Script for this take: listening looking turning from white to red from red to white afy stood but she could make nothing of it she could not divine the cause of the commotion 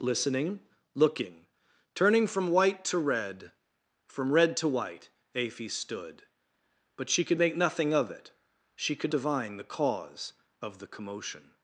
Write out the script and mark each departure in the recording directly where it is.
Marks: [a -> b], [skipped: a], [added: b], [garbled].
listening looking turning from white to red from red to white afy stood but she could make nothing of it she could [skipped: not] divine the cause of the commotion